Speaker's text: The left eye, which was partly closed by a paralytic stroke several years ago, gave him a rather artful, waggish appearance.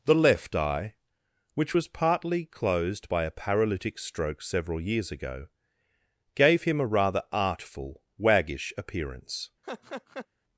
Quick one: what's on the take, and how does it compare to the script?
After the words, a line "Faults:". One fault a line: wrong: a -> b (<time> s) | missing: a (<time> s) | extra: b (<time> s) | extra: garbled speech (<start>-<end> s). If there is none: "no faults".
The left eye, which was partly closed by a paralytic stroke several years ago, gave him a rather artful, waggish appearance.
Faults:
no faults